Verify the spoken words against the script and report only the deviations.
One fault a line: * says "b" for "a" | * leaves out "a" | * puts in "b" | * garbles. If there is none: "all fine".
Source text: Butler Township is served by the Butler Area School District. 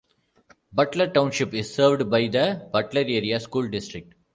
all fine